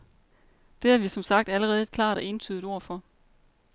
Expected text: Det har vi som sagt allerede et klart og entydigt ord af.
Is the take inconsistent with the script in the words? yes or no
yes